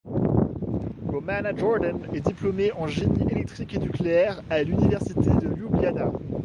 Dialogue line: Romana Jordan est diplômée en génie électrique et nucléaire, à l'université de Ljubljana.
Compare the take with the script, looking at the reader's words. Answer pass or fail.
pass